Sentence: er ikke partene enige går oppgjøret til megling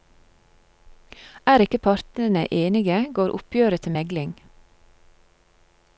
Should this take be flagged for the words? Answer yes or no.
no